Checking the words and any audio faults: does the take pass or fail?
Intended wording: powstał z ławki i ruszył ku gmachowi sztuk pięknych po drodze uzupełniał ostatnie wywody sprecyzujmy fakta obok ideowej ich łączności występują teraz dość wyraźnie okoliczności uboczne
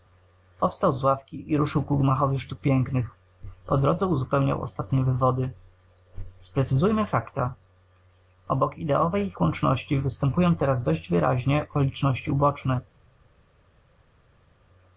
pass